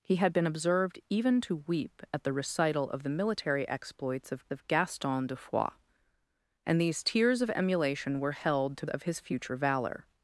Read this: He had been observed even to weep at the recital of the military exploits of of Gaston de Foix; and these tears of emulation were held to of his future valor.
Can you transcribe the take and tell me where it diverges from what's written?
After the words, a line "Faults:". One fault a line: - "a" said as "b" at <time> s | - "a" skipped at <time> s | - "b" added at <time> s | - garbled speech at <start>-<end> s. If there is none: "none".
He had been observed even to weep at the recital of the military exploits of of Gaston de Foix; and these tears of emulation were held to of his future valor.
Faults:
none